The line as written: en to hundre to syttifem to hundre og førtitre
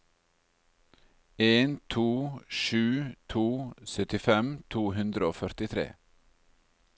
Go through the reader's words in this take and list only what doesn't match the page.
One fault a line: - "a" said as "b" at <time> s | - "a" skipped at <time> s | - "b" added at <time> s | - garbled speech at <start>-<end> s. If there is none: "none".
- "hundre" said as "sju" at 2.6 s